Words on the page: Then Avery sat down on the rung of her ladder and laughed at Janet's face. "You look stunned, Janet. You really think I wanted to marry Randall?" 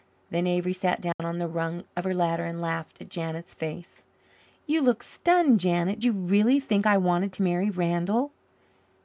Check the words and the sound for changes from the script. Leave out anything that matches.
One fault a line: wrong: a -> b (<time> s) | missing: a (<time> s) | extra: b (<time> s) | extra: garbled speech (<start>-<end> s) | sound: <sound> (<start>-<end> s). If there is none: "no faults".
sound: dropout (1.1-1.2 s)